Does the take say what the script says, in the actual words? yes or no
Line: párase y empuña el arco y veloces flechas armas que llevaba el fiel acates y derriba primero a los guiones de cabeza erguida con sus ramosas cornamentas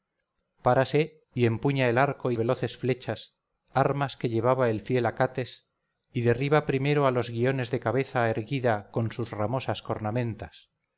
yes